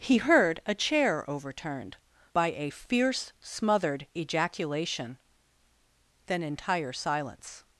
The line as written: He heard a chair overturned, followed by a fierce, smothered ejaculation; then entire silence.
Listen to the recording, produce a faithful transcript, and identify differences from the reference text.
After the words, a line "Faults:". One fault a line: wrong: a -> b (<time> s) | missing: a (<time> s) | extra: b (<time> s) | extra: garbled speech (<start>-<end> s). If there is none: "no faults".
He heard a chair overturned, by a fierce, smothered ejaculation; then entire silence.
Faults:
missing: followed (2.0 s)